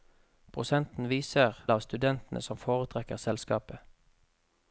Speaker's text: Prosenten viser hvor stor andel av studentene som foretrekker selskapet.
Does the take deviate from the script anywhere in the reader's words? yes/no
yes